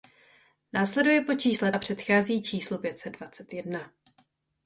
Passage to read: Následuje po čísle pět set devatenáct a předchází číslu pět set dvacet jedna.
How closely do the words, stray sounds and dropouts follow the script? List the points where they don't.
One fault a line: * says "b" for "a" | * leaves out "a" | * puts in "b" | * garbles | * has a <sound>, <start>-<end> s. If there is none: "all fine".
* leaves out "pět set devatenáct"